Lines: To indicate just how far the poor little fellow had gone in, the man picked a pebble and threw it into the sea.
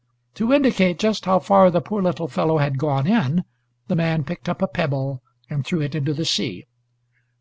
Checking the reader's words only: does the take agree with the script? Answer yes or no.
no